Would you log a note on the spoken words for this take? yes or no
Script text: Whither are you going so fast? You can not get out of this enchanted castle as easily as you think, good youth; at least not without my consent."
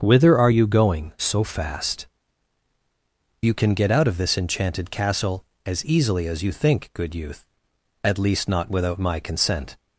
yes